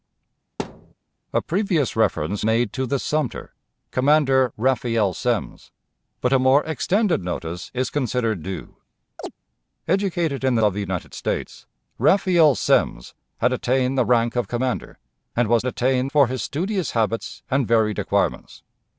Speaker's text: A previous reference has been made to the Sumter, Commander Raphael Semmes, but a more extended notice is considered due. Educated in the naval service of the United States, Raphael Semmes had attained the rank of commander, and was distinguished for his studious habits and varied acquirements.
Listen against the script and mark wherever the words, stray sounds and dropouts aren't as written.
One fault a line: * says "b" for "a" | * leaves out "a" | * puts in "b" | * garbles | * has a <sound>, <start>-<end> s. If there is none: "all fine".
* has a thud, 0.6-0.9 s
* leaves out "has been"
* has a chirp, 9.2-9.3 s
* leaves out "naval service"
* says "attained" for "distinguished"